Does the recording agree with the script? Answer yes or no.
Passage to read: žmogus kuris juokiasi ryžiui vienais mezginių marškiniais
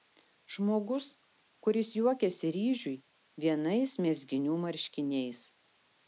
yes